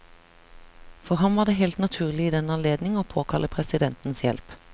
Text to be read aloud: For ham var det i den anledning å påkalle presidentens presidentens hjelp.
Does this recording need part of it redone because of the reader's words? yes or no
yes